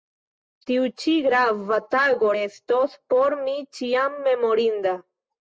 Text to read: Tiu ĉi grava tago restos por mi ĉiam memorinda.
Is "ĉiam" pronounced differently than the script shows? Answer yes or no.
no